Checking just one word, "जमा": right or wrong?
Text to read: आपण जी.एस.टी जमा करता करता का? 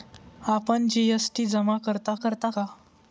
right